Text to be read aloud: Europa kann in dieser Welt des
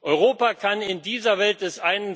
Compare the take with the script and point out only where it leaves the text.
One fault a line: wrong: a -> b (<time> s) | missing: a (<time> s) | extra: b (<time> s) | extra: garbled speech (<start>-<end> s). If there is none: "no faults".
no faults